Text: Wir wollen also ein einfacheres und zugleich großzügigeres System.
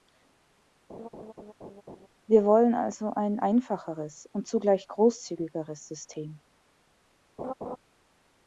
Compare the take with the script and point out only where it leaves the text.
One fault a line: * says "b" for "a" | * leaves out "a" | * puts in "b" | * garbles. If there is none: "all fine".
all fine